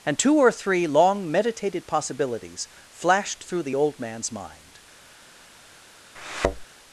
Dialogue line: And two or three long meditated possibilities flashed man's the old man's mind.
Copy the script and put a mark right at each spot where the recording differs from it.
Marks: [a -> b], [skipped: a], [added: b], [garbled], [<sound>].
And two or three long meditated possibilities flashed [man's -> through] the old man's mind. [thud]